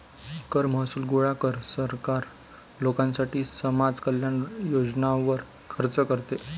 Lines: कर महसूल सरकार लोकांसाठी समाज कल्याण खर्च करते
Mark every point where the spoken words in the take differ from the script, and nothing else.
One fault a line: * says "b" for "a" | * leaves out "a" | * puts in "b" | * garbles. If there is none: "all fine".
* puts in "गोळा कर"
* puts in "योजनांवर"